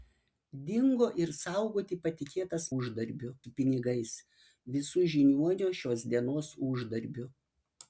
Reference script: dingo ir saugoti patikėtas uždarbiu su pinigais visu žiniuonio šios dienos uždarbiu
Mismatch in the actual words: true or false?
false